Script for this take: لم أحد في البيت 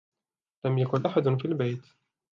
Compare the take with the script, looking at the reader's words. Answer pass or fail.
fail